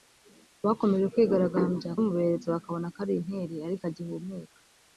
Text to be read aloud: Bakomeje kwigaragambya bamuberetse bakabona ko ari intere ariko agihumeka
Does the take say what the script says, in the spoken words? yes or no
yes